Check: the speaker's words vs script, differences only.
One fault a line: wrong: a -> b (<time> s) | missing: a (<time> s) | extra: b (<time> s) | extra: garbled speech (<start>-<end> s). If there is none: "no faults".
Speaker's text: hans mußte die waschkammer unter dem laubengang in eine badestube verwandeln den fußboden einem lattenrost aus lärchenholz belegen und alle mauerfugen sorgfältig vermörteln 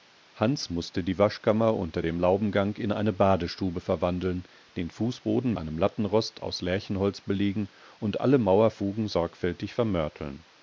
no faults